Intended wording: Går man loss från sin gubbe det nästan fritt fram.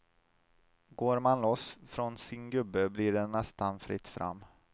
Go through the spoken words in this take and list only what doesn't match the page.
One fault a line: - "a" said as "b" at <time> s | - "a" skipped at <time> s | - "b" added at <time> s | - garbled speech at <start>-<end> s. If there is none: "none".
- "blir" added at 2.9 s